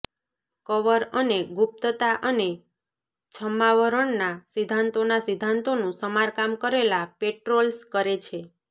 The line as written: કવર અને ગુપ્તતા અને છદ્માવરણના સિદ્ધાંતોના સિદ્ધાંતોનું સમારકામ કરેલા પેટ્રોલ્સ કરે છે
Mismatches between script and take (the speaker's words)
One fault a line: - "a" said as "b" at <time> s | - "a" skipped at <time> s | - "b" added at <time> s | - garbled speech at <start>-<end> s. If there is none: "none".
none